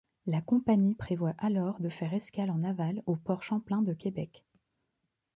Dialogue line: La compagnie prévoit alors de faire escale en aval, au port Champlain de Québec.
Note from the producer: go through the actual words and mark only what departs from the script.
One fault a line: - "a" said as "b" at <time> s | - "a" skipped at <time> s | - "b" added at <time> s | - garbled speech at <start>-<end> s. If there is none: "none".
none